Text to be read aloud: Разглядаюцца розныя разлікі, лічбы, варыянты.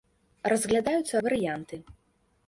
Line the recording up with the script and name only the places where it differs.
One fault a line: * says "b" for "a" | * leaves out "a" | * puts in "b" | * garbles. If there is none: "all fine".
* leaves out "розныя разлікі лічбы"